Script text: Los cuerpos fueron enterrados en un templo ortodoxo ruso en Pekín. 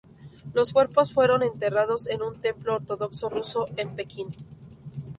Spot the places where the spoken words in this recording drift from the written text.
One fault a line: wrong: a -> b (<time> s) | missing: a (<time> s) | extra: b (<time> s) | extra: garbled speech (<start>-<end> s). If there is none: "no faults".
no faults